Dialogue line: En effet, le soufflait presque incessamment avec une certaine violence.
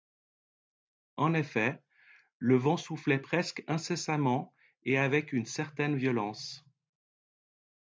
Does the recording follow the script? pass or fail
fail